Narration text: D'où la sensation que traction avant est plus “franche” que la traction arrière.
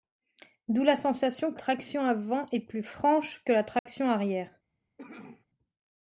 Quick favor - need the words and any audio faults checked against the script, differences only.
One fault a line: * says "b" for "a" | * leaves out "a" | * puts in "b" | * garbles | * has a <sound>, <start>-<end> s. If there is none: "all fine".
* has a dropout, 3.8-3.9 s
* has a cough, 5.0-5.5 s